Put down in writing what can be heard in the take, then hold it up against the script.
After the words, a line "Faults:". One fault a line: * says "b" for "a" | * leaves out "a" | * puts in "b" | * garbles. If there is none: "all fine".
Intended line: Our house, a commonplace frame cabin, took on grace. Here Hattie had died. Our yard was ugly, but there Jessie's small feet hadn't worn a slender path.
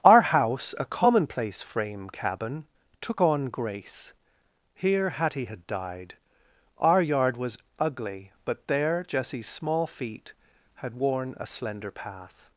Our house, a commonplace frame cabin, took on grace. Here Hattie had died. Our yard was ugly, but there Jessie's small feet had worn a slender path.
Faults:
* says "had" for "hadn't"